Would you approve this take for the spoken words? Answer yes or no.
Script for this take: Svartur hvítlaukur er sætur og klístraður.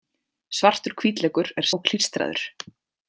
no